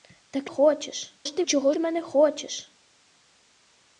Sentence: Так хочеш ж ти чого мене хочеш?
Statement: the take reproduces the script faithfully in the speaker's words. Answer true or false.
true